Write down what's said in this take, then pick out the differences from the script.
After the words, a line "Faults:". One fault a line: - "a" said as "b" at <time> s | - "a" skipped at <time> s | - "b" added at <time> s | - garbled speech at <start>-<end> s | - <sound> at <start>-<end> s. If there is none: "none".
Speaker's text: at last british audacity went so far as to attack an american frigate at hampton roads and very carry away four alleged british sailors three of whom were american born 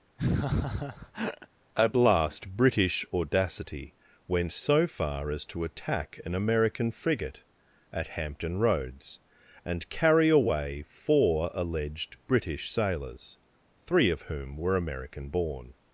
at last british audacity went so far as to attack an american frigate at hampton roads and carry away four alleged british sailors three of whom were american born
Faults:
- laugh at 0.2-1.5 s
- "very" skipped at 9.9 s